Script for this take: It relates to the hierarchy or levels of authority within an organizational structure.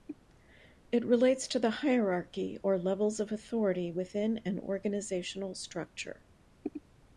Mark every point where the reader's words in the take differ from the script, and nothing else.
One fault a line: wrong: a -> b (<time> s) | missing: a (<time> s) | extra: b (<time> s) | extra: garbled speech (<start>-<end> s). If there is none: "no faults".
no faults